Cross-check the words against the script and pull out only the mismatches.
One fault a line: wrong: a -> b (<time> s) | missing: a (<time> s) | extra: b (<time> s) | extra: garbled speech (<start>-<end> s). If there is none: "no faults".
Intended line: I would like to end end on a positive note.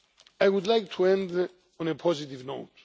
missing: end (1.5 s)